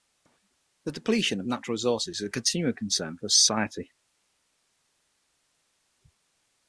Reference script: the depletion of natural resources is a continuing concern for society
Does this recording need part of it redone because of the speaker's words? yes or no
no